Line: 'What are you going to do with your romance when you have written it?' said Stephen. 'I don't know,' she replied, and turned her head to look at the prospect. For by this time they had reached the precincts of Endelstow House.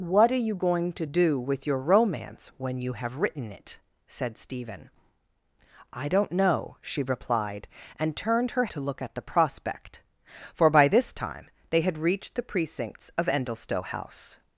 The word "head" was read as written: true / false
false